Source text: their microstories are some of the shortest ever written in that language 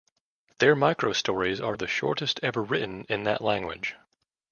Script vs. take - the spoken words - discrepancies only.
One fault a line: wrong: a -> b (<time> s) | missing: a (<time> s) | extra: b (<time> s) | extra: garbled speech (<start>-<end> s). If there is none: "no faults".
missing: some (1.8 s)